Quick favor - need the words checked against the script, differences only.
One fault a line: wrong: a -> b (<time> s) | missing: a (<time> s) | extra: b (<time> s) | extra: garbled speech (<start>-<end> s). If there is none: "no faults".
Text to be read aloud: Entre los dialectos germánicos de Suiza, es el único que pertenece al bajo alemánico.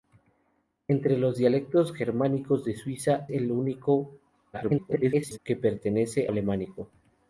missing: es (3.3 s)
extra: garbled speech (4.5-5.4 s)
missing: al bajo (6.3 s)